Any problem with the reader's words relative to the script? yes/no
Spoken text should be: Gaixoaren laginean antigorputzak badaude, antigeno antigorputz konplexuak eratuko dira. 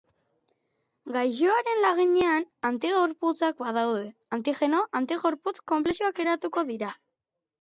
no